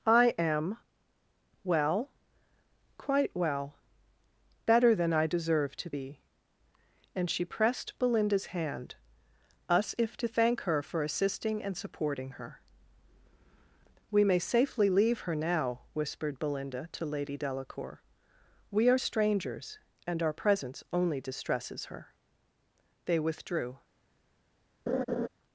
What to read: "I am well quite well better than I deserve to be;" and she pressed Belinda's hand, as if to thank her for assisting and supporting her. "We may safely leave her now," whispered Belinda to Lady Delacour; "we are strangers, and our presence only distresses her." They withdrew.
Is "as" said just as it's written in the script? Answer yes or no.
no